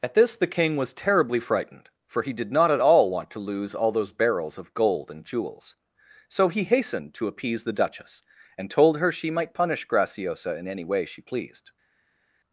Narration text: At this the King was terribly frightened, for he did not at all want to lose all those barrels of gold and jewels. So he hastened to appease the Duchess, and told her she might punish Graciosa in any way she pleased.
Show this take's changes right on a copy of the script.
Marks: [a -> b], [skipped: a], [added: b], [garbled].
At this the King was terribly frightened, for he did not at all want to lose all those barrels of gold and jewels. So he hastened to appease the Duchess, and told her she might punish Graciosa in any way she pleased.